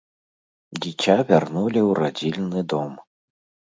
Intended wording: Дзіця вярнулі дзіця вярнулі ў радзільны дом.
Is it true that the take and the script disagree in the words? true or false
true